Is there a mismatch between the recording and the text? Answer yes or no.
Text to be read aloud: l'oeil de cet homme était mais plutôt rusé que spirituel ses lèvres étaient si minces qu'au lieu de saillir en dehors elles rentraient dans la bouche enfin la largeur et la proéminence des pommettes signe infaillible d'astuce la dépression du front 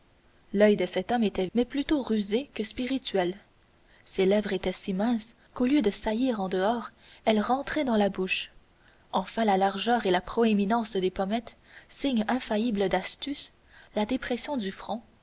no